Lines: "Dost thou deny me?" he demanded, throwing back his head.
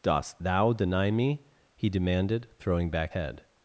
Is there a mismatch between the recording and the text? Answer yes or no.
yes